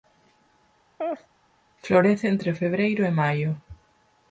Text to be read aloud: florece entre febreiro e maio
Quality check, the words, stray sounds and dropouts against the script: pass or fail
fail